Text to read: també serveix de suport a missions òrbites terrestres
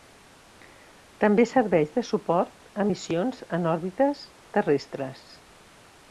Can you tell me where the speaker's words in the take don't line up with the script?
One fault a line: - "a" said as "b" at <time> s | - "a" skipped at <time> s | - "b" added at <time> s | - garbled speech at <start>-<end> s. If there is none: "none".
- "en" added at 3.6 s